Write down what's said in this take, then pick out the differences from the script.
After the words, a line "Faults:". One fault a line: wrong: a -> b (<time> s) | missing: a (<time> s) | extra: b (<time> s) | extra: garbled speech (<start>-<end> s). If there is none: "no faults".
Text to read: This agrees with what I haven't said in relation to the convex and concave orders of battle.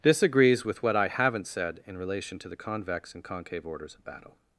This agrees with what I haven't said in relation to the convex and concave orders of battle.
Faults:
no faults